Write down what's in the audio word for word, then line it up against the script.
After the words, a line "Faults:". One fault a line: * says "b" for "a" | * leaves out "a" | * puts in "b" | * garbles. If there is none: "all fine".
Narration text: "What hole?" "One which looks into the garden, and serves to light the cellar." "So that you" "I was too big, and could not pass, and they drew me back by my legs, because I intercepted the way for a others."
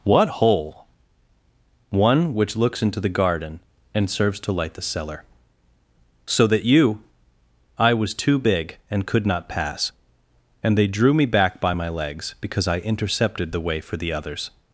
"What hole?" "One which looks into the garden, and serves to light the cellar." "So that you" "I was too big, and could not pass, and they drew me back by my legs, because I intercepted the way for the others."
Faults:
* says "the" for "a"